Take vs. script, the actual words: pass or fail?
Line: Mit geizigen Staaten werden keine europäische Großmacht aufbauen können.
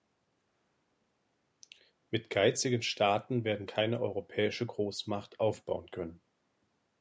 pass